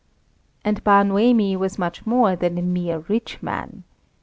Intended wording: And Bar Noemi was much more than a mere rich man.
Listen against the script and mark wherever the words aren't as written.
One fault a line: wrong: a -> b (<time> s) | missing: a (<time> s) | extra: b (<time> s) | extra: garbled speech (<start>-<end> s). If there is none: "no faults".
no faults